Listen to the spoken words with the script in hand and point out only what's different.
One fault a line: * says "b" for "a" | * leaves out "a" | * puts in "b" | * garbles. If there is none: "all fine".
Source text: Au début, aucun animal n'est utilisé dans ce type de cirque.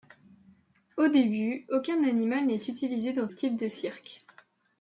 * leaves out "ce"